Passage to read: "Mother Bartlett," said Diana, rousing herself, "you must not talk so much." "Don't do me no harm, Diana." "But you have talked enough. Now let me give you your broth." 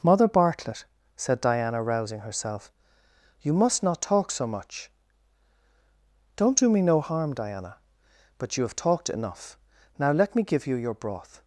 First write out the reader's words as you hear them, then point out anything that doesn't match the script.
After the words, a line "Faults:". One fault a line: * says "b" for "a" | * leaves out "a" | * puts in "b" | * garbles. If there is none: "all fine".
"Mother Bartlett," said Diana, rousing herself, "you must not talk so much." "Don't do me no harm, Diana." "But you have talked enough. Now let me give you your broth."
Faults:
all fine